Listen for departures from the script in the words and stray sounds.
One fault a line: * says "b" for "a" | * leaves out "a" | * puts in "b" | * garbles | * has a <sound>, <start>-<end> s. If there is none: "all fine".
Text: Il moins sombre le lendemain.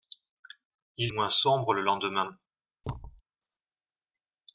* has a thud, 2.8-3.2 s